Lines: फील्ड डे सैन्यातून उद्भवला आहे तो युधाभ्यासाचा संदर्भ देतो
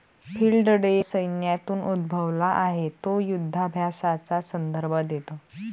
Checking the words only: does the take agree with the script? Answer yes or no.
yes